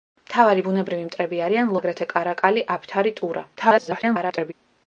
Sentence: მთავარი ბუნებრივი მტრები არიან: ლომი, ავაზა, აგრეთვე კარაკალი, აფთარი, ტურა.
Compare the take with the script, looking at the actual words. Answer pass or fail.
fail